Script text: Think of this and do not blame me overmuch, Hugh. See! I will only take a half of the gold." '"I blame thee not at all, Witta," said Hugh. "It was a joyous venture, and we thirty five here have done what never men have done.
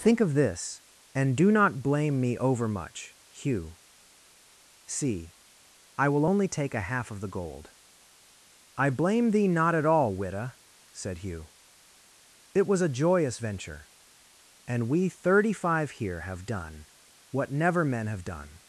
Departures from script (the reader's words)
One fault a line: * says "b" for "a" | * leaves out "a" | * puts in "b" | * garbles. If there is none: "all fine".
all fine